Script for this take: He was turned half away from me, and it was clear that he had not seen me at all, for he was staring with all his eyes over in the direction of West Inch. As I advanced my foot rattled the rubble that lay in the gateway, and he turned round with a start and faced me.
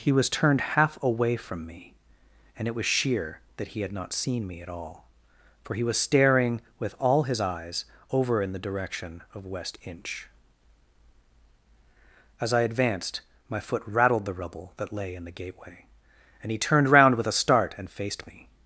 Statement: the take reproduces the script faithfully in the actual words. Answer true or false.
false